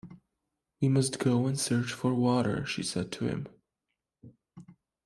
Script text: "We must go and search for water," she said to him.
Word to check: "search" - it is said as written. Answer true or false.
true